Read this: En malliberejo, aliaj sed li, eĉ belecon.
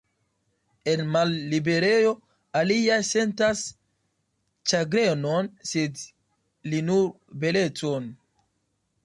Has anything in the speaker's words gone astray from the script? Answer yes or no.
yes